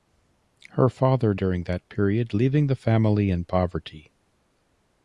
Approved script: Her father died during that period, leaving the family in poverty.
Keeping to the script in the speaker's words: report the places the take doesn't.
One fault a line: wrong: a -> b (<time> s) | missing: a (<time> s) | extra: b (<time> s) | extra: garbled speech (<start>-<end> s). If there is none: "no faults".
missing: died (1.4 s)